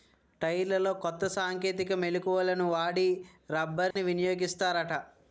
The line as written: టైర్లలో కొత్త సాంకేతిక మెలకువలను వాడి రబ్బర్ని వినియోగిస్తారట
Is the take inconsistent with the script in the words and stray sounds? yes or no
yes